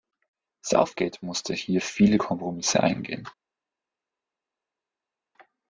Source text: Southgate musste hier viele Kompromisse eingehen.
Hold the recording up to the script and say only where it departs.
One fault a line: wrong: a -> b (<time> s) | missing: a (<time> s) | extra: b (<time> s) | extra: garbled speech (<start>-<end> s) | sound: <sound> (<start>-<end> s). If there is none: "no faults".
no faults